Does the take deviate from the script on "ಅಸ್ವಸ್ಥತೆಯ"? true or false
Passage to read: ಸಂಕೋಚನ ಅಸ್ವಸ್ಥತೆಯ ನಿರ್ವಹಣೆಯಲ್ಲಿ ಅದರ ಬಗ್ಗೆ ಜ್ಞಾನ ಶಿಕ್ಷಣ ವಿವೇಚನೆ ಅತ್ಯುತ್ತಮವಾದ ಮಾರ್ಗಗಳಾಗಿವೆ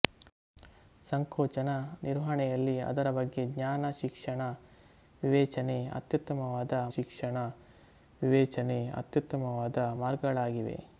true